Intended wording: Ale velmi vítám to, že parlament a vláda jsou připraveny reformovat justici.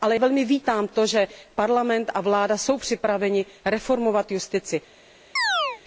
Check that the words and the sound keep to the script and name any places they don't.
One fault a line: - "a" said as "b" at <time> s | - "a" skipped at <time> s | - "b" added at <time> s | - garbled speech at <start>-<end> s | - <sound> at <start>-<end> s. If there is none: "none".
- chirp at 5.4-5.8 s